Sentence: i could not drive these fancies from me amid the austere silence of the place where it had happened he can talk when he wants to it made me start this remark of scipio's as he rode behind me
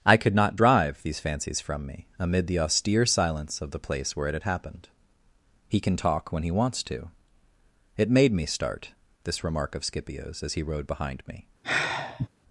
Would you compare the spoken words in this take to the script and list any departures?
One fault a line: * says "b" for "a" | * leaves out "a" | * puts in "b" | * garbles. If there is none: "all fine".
all fine